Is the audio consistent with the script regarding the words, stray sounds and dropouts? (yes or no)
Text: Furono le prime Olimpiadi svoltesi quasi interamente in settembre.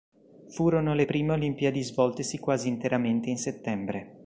yes